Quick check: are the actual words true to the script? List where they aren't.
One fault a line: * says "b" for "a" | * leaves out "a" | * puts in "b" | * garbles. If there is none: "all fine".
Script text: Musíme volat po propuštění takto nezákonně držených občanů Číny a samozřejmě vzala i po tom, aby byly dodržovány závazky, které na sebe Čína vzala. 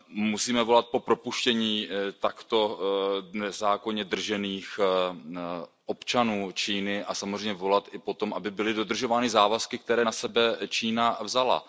* says "volat" for "vzala"